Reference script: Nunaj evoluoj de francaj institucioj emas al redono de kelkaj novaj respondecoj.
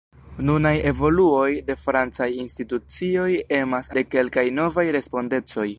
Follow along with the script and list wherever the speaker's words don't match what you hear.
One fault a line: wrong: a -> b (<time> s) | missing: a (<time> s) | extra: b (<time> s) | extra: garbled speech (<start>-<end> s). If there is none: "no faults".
missing: al redono (3.9 s)